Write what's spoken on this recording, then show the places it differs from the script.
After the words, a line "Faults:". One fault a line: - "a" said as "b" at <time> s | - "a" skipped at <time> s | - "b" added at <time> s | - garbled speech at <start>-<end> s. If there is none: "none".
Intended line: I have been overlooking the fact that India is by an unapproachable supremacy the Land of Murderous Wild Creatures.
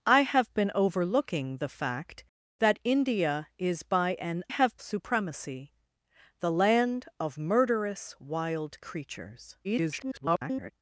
I have been overlooking the fact that India is by an have supremacy the Land of Murderous Wild Creatures. [garbled]
Faults:
- "unapproachable" said as "have" at 4.5 s
- garbled speech at 9.6-10.7 s